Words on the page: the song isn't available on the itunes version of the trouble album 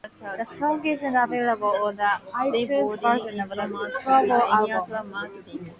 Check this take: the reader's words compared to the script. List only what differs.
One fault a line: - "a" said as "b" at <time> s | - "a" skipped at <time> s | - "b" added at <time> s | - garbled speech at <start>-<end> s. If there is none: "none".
none